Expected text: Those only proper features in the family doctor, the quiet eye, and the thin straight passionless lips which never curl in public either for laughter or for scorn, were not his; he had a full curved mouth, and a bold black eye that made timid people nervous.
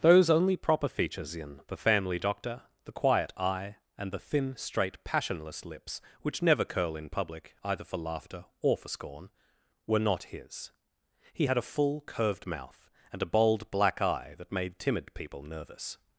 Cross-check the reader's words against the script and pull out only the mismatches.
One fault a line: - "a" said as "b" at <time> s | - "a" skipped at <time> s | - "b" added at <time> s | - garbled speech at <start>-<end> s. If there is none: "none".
none